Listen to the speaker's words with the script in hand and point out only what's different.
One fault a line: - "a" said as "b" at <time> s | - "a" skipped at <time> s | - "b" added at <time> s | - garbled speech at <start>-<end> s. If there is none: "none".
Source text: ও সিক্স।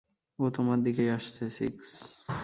- "তোমার দিকেই আসছে" added at 0.5 s